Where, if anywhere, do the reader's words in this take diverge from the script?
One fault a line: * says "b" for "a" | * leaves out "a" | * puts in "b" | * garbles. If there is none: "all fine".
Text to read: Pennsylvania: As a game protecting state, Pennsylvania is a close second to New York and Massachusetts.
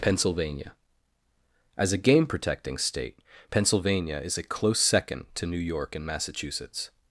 all fine